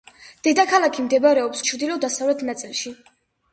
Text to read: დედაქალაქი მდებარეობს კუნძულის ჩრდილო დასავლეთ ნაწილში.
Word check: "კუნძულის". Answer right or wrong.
wrong